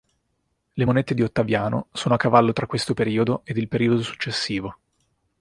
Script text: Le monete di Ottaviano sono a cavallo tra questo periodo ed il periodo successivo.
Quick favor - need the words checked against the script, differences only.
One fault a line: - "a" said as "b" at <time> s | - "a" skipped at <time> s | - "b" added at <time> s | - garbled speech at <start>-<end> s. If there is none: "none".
none